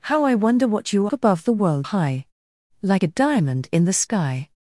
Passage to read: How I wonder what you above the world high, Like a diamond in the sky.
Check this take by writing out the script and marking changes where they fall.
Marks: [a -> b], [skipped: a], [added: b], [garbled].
How I wonder what you above the world high, Like a diamond in the sky.